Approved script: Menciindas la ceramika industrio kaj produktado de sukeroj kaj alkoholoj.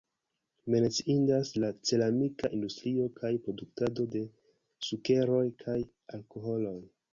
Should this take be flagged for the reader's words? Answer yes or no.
no